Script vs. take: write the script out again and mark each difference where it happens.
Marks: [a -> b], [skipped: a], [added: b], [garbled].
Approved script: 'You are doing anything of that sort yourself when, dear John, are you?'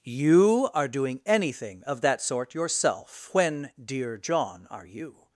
'You are doing anything of that sort yourself when, dear John, are you?'